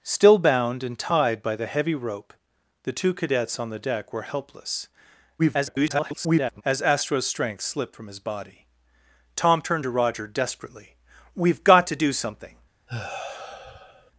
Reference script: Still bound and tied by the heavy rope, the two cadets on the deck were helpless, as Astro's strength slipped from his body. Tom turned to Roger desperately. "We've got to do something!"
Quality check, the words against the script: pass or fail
fail